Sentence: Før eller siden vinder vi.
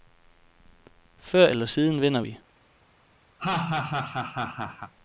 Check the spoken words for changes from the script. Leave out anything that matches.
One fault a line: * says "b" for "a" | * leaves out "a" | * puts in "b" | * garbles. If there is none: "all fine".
all fine